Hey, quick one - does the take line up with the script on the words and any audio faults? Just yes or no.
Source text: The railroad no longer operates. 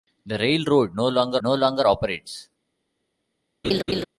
no